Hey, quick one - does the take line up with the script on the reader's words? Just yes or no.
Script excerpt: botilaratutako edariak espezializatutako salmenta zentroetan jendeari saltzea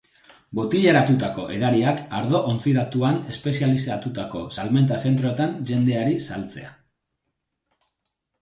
no